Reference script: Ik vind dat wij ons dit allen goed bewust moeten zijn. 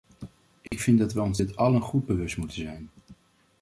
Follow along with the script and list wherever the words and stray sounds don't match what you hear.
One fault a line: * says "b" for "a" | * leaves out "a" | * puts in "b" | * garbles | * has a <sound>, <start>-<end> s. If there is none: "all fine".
* has a dropout, 0.7-0.7 s